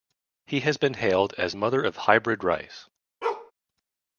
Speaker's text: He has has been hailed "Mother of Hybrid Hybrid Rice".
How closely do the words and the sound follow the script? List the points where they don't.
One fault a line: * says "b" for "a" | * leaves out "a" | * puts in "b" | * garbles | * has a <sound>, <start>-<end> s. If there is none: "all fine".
* leaves out "has"
* puts in "as"
* leaves out "Hybrid"
* has a bark, 3.2-3.5 s